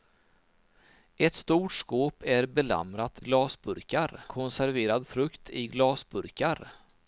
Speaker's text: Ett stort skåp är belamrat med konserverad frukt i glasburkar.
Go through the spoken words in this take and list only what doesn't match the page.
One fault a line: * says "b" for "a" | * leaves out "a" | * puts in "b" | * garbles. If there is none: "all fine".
* says "glasburkar" for "med"